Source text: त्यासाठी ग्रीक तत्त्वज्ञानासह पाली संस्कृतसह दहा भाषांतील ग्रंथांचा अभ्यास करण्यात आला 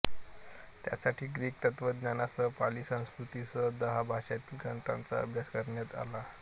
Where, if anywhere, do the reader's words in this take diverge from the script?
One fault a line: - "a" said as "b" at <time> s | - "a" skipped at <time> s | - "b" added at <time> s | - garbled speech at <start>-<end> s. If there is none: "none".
none